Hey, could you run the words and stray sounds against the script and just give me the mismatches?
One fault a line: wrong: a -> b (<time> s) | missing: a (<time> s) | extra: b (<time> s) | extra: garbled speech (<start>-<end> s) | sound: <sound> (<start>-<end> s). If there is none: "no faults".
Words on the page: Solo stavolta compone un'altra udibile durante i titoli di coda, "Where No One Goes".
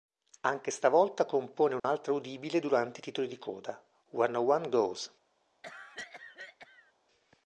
wrong: Solo -> Anche (0.4 s)
sound: dropout (1.8-1.8 s)
sound: cough (5.6-6.9 s)